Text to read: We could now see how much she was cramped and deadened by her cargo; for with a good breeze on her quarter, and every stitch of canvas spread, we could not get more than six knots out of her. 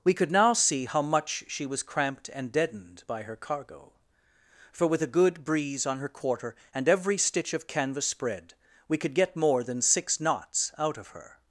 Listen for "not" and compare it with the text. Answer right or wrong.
wrong